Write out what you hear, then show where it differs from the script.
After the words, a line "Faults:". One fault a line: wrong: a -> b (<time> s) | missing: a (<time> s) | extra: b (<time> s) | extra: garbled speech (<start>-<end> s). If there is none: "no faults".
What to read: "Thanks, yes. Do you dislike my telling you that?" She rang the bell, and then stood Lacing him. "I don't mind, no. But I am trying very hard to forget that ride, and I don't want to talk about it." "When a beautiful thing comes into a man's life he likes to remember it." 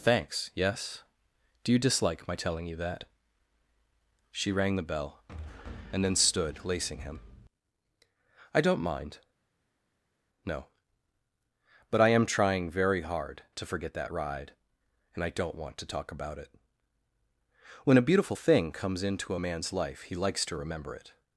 "Thanks, yes. Do you dislike my telling you that?" She rang the bell, and then stood Lacing him. "I don't mind, no. But I am trying very hard to forget that ride, and I don't want to talk about it." "When a beautiful thing comes into a man's life he likes to remember it."
Faults:
no faults